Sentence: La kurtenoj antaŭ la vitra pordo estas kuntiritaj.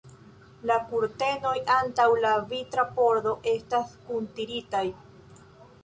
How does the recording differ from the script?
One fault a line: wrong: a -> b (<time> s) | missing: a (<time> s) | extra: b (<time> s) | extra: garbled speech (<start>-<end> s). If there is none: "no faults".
no faults